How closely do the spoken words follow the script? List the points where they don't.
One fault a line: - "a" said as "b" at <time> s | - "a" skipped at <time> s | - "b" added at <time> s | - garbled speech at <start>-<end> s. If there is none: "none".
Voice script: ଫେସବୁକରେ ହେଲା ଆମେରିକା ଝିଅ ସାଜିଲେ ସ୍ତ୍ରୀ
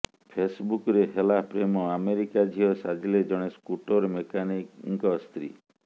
- "ପ୍ରେମ" added at 1.5 s
- "ଜଣେ ସ୍କୁଟର ମେକାନିକଙ୍କ" added at 3.3 s